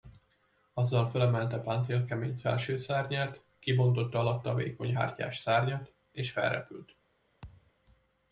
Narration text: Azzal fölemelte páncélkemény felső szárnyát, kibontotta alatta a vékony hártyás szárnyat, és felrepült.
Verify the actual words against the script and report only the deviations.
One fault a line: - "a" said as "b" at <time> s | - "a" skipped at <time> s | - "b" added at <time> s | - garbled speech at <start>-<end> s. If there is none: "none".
none